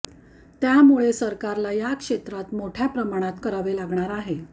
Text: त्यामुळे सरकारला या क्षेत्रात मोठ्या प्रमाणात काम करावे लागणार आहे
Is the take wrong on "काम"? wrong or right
wrong